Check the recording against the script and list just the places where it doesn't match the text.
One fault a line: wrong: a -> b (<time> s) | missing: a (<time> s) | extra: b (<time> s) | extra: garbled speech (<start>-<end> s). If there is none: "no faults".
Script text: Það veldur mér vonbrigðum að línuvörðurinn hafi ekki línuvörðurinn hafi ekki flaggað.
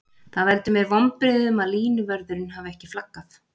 missing: línuvörðurinn hafi ekki (2.9 s)